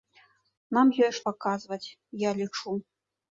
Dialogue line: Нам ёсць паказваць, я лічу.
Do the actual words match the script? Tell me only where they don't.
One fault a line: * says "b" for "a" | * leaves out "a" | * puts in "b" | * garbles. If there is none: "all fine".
all fine